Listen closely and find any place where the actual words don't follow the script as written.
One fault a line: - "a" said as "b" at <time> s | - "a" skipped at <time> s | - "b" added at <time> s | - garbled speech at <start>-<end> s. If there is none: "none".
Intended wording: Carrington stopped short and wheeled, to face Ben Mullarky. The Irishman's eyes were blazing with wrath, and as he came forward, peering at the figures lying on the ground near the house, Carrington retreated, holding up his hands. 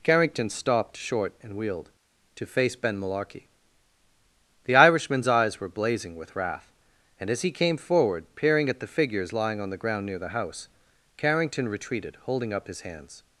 none